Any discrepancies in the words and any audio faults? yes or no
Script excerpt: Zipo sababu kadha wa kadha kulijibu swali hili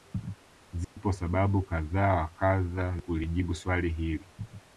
yes